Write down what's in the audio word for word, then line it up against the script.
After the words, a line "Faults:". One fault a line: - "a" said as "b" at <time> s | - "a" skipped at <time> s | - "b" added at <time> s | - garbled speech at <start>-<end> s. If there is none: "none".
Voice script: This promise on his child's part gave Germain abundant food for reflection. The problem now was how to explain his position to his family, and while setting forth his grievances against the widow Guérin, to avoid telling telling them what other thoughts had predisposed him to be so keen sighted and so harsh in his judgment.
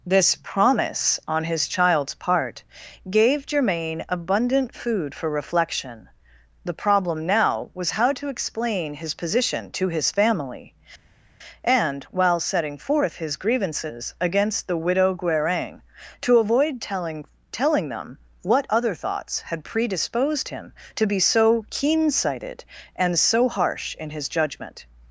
This promise on his child's part gave Germain abundant food for reflection. The problem now was how to explain his position to his family, and while setting forth his grievances against the widow Guérin, to avoid telling telling them what other thoughts had predisposed him to be so keen sighted and so harsh in his judgment.
Faults:
none